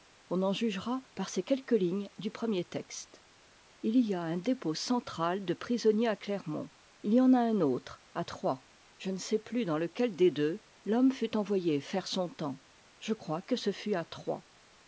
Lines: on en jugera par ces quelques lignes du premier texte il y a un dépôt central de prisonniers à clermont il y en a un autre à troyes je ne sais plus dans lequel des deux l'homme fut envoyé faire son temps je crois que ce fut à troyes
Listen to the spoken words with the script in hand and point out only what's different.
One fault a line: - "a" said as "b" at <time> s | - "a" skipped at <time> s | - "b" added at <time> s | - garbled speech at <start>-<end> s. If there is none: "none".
none